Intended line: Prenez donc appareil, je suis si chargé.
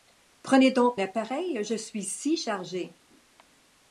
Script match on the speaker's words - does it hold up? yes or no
yes